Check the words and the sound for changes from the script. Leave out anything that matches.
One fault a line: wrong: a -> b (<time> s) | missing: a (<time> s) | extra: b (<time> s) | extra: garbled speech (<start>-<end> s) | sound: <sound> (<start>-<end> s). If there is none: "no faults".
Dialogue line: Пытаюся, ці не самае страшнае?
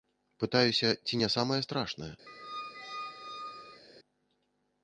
sound: squeak (2.3-3.8 s)